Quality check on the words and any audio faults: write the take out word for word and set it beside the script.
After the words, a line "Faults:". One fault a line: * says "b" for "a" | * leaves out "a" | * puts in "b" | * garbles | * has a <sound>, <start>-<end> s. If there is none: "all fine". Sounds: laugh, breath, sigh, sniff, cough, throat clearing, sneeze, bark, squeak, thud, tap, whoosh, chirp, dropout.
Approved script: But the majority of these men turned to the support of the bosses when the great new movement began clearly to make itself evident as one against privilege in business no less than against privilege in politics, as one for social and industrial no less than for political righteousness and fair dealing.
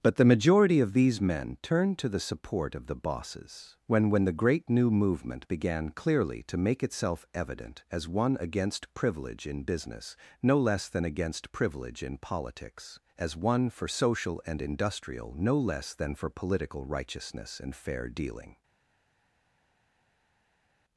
But the majority of these men turned to the support of the bosses when when the great new movement began clearly to make itself evident as one against privilege in business no less than against privilege in politics, as one for social and industrial no less than for political righteousness and fair dealing.
Faults:
* puts in "when"